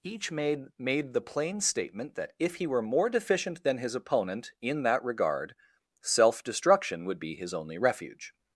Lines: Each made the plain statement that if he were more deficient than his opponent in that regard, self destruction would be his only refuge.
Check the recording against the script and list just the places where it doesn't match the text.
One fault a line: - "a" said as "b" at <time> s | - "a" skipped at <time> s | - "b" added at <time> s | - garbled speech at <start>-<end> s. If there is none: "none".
- "made" added at 0.8 s